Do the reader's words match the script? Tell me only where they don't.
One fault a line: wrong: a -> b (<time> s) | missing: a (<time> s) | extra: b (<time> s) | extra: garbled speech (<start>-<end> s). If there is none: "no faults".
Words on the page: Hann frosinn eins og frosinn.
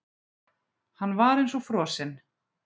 wrong: frosinn -> var (1.2 s)